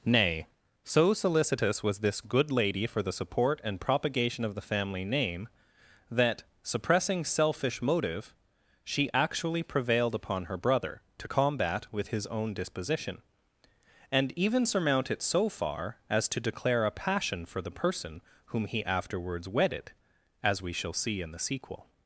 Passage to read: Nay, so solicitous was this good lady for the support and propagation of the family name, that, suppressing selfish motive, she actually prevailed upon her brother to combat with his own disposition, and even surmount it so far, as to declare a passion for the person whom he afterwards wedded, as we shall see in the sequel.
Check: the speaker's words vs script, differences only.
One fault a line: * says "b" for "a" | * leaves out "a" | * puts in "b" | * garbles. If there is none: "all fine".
all fine